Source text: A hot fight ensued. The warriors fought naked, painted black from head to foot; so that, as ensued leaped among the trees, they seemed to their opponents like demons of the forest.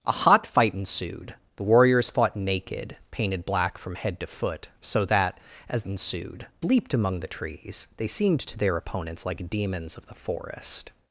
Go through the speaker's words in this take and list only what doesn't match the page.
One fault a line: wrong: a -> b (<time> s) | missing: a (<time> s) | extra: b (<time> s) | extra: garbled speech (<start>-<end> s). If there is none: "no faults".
no faults